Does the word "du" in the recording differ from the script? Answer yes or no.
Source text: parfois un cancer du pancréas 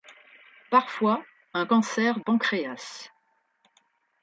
yes